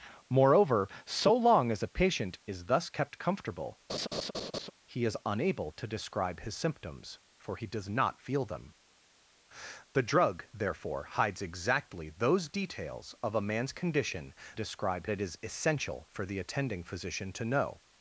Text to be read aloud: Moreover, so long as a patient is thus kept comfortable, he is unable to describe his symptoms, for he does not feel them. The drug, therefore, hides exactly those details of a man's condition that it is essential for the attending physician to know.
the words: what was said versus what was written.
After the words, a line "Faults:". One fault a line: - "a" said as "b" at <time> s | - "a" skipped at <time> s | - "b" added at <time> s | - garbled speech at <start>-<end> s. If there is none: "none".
Moreover, so long as a patient is thus kept comfortable, he is unable to describe his symptoms, for he does not feel them. The drug, therefore, hides exactly those details of a man's condition describe it is essential for the attending physician to know.
Faults:
- "that" said as "describe" at 14.5 s